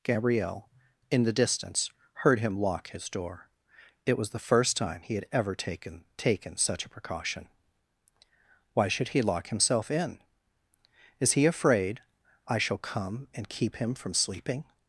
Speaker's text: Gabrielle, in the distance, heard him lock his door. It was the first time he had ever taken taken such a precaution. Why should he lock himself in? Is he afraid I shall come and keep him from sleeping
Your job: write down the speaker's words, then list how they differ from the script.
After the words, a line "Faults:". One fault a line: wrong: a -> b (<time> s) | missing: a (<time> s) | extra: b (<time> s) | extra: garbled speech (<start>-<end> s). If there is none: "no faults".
Gabrielle, in the distance, heard him lock his door. It was the first time he had ever taken taken such a precaution. Why should he lock himself in? Is he afraid I shall come and keep him from sleeping
Faults:
no faults